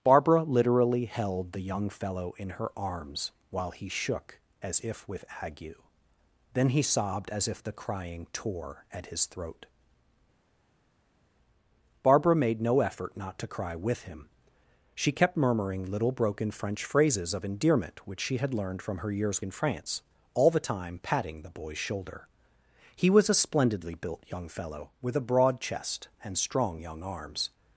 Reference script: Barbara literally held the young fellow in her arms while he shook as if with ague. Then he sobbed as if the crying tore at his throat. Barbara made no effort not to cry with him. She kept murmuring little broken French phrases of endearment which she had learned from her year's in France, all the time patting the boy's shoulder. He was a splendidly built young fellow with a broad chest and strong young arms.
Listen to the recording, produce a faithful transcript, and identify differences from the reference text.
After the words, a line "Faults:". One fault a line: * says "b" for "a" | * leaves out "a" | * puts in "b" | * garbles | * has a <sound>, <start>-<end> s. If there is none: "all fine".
Barbara literally held the young fellow in her arms while he shook as if with ague. Then he sobbed as if the crying tore at his throat. Barbara made no effort not to cry with him. She kept murmuring little broken French phrases of endearment which she had learned from her year's in France, all the time patting the boy's shoulder. He was a splendidly built young fellow with a broad chest and strong young arms.
Faults:
all fine